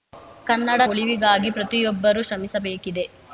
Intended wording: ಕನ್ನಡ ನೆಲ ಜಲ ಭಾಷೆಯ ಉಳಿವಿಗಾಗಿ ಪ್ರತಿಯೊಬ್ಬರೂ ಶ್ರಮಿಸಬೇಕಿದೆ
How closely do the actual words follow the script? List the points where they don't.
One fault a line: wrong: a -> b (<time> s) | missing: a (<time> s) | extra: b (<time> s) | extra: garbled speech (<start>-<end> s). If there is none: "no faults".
missing: ನೆಲ ಜಲ ಭಾಷೆಯ (0.8 s)